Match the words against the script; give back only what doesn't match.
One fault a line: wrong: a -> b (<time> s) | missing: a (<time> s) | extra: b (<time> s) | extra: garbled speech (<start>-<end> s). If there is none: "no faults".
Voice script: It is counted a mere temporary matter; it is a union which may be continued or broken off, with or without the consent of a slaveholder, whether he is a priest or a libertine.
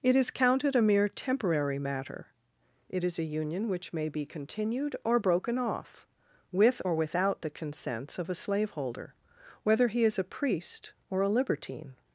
wrong: consent -> consents (7.5 s)